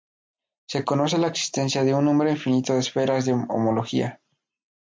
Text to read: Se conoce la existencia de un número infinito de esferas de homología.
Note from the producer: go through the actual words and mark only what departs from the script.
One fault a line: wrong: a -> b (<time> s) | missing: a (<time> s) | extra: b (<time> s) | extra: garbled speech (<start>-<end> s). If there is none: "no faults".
no faults